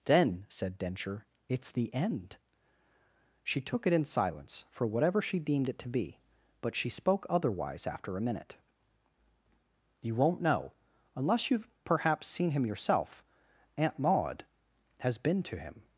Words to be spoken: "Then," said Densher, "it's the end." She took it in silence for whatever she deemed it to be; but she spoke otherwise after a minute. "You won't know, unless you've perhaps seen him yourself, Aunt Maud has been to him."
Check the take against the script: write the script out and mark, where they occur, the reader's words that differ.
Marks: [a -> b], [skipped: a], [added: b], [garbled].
"Then," said Densher, "it's the end." She took it in silence for whatever she deemed it to be; but she spoke otherwise after a minute. "You won't know, unless you've perhaps seen him yourself, Aunt Maud has been to him."